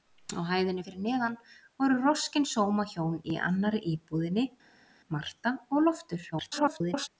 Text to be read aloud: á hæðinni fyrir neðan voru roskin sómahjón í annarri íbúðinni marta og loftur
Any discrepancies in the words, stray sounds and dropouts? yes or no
yes